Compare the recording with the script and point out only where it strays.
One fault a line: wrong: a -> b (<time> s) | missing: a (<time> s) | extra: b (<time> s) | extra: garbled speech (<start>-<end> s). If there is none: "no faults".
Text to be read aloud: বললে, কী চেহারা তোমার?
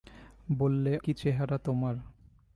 no faults